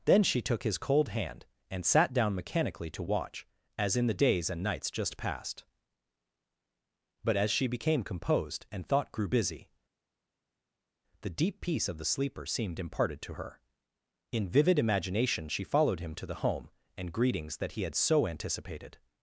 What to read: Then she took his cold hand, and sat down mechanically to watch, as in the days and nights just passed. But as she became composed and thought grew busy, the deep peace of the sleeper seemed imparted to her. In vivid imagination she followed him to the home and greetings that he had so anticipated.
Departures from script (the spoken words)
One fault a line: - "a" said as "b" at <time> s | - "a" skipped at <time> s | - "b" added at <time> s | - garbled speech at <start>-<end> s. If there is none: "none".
none